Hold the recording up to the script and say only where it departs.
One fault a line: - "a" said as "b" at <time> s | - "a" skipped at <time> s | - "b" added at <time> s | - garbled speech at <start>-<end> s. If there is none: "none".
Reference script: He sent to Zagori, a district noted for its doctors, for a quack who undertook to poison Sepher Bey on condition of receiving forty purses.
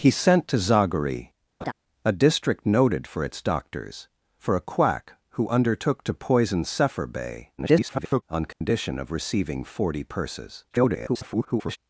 - garbled speech at 7.6-8.2 s
- garbled speech at 10.7-11.8 s